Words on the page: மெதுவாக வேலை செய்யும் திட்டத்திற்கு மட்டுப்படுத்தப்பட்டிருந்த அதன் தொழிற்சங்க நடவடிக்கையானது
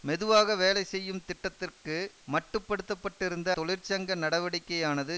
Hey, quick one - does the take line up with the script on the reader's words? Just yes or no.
no